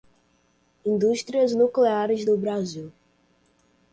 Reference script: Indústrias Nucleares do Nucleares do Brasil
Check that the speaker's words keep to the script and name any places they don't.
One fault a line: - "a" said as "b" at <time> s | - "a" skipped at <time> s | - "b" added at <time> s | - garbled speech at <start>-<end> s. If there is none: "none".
- "Nucleares do" skipped at 2.4 s